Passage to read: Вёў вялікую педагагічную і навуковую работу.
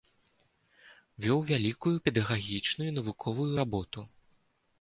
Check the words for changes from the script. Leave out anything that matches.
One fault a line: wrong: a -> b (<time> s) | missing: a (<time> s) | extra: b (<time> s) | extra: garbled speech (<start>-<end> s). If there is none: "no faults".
no faults